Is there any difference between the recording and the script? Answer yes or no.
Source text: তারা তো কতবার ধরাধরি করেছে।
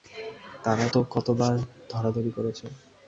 no